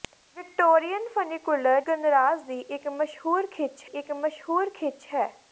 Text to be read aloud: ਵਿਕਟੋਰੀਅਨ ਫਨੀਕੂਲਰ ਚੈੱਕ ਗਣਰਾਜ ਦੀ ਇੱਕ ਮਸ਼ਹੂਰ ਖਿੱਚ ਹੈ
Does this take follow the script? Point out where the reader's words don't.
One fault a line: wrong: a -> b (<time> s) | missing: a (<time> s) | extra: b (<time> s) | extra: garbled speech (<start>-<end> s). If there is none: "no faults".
missing: ਚੈੱਕ (1.8 s)
extra: ਇੱਕ ਮਸ਼ਹੂਰ ਖਿੱਚ (3.8 s)